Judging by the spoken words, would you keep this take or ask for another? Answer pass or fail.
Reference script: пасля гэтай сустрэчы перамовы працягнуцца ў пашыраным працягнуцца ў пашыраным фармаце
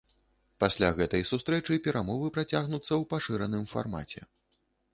fail